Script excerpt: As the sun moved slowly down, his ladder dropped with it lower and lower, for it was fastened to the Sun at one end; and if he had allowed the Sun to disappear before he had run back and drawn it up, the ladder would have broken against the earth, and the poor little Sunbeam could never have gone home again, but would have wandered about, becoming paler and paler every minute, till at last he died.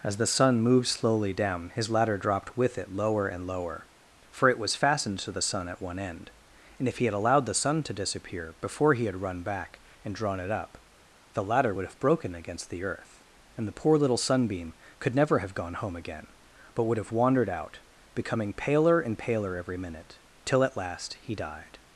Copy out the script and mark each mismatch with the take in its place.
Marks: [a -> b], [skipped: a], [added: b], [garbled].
As the sun moved slowly down, his ladder dropped with it lower and lower, for it was fastened to the Sun at one end; and if he had allowed the Sun to disappear before he had run back and drawn it up, the ladder would have broken against the earth, and the poor little Sunbeam could never have gone home again, but would have wandered [about, -> out] becoming paler and paler every minute, till at last he died.